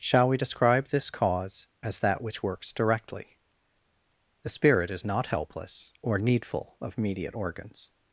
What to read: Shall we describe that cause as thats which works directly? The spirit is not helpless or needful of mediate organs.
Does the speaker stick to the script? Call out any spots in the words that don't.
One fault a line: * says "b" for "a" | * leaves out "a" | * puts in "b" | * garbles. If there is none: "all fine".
* says "this" for "that"
* says "that" for "thats"